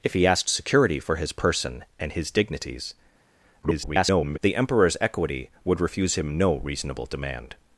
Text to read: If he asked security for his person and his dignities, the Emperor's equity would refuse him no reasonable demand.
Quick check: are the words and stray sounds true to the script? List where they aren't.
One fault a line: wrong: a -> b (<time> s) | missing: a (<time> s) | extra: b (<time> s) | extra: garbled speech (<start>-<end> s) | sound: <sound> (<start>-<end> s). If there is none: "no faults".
extra: garbled speech (3.6-4.4 s)